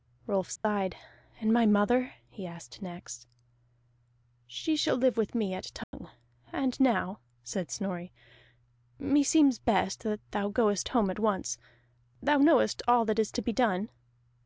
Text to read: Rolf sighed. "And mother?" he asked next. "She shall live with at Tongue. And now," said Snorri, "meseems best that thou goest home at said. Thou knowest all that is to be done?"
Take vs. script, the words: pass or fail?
fail